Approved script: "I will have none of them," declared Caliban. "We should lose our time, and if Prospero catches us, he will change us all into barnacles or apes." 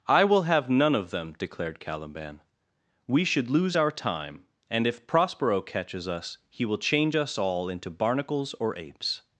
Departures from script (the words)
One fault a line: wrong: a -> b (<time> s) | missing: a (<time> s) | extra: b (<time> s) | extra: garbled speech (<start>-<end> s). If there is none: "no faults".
no faults